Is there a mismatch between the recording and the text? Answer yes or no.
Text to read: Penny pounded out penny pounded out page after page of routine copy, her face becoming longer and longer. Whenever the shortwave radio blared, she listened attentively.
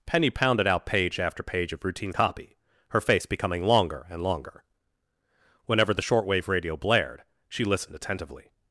yes